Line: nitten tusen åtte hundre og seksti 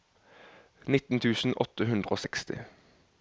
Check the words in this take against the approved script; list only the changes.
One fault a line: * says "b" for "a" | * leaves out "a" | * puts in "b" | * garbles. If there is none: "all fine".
all fine